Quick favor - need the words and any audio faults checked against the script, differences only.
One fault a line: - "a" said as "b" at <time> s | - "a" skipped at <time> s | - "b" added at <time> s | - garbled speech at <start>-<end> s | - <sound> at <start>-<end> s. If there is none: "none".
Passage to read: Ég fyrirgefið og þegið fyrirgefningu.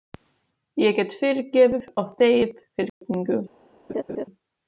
- "get" added at 1.0 s
- dropout at 2.9-3.0 s
- laugh at 3.9-4.3 s